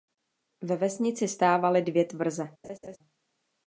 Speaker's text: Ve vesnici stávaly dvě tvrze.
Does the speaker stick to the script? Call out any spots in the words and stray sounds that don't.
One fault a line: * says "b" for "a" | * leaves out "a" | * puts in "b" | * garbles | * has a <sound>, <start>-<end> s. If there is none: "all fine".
* has a laugh, 2.6-3.0 s